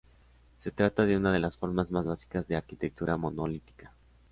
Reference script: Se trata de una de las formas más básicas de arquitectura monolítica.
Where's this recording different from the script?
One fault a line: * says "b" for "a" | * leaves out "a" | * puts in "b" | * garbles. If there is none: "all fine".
all fine